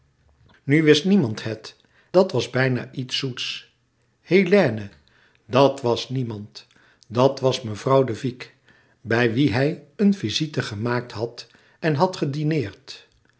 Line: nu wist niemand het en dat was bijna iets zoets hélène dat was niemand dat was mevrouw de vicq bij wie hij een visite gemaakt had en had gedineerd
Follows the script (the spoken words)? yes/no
no